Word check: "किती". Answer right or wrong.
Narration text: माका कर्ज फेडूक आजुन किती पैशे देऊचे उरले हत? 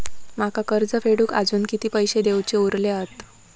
right